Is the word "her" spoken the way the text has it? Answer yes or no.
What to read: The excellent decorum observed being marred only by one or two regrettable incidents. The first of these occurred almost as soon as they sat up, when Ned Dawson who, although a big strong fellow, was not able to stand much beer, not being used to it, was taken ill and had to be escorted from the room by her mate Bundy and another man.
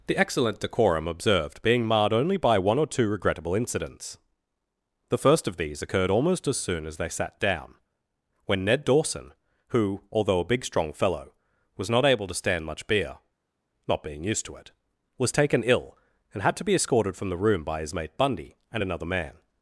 no